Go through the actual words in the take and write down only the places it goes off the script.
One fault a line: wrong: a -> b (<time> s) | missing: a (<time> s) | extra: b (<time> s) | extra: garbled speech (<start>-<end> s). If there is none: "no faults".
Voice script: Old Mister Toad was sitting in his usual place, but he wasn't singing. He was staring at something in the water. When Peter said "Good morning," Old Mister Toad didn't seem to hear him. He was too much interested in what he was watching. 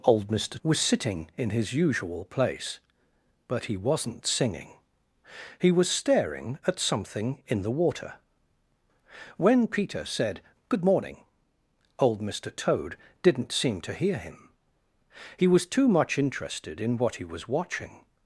missing: Toad (0.6 s)